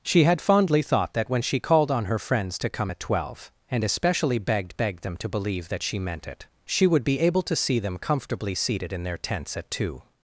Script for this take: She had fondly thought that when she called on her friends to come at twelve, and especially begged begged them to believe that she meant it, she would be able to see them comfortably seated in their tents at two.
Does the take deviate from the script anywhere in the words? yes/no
no